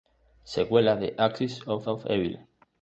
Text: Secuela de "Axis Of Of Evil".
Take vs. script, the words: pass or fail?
pass